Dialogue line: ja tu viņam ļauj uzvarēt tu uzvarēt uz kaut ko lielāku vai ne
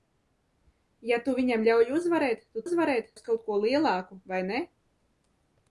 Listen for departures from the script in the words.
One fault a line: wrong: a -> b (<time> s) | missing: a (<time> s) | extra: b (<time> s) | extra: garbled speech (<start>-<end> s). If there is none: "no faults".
no faults